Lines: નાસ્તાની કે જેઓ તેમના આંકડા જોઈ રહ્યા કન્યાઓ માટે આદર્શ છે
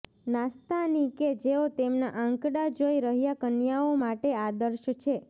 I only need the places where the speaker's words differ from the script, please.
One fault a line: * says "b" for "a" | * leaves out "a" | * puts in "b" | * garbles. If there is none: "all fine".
all fine